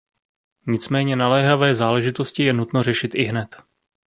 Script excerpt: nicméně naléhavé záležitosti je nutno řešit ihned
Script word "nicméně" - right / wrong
right